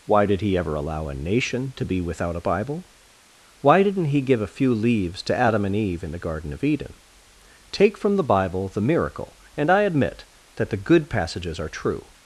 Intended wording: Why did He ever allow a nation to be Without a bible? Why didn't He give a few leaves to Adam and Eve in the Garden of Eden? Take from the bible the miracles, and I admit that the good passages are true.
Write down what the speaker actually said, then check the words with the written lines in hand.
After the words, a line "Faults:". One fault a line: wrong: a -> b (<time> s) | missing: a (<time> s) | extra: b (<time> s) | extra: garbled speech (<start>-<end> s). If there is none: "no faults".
Why did He ever allow a nation to be Without a bible? Why didn't He give a few leaves to Adam and Eve in the Garden of Eden? Take from the bible the miracle, and I admit that the good passages are true.
Faults:
wrong: miracles -> miracle (8.8 s)